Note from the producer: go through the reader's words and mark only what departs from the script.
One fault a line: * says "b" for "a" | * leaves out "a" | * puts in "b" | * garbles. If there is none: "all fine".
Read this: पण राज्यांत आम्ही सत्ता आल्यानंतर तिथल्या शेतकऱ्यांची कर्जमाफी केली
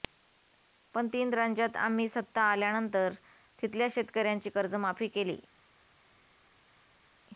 * puts in "तीन"